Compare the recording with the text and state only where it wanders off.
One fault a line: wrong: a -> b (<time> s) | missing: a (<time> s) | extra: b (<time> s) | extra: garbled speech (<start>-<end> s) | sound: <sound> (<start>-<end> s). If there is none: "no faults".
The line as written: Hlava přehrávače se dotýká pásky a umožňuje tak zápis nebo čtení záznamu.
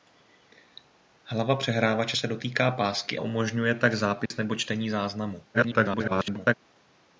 missing: a (3.2 s)
sound: dropout (4.3-4.3 s)
extra: garbled speech (5.5-6.5 s)